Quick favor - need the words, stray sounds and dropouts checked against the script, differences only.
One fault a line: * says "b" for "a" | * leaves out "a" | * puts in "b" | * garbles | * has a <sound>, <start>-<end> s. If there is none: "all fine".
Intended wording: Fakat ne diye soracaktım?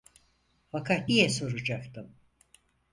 * leaves out "ne"